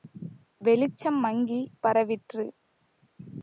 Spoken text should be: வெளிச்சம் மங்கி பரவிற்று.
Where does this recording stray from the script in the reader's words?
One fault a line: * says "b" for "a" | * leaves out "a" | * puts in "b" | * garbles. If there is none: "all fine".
all fine